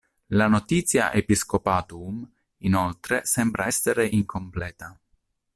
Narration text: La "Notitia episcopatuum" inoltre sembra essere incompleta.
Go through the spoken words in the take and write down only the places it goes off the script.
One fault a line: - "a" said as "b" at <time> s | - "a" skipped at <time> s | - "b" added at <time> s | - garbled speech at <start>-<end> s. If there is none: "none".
none